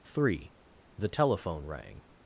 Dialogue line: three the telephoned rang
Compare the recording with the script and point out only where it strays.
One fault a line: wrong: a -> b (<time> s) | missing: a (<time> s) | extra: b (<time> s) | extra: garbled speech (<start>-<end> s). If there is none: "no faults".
wrong: telephoned -> telephone (1.1 s)